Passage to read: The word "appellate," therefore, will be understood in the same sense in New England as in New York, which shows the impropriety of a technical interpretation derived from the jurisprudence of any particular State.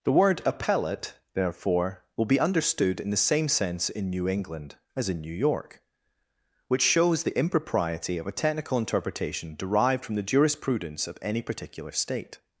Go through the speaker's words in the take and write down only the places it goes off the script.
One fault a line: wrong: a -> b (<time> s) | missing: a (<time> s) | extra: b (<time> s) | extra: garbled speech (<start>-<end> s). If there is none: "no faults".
no faults